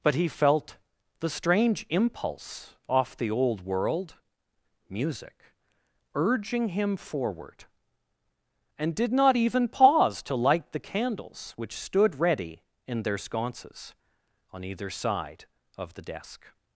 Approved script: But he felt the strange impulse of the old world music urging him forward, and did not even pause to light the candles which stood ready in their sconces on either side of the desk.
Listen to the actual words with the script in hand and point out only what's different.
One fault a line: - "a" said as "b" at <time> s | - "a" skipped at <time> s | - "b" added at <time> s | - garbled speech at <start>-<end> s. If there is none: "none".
- "of" said as "off" at 2.9 s